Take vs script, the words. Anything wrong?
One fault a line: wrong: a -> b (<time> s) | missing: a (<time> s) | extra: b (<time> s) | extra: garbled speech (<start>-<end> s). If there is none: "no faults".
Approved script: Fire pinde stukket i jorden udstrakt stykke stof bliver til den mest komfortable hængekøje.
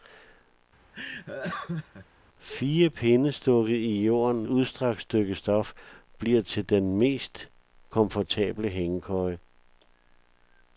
no faults